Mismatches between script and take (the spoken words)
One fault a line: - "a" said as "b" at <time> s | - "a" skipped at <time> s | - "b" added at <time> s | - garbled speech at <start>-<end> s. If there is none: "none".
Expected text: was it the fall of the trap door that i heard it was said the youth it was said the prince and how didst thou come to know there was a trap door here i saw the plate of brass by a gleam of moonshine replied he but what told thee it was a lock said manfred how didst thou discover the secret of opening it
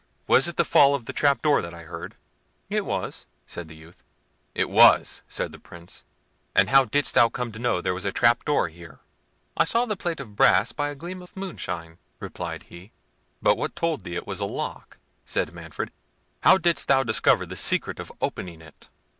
none